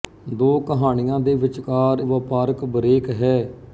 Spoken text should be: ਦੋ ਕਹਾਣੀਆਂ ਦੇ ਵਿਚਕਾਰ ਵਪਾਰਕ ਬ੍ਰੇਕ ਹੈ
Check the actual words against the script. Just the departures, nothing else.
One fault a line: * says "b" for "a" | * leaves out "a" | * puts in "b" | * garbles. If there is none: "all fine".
all fine